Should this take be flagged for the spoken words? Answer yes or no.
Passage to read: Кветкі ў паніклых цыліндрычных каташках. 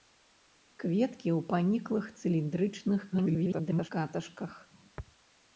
yes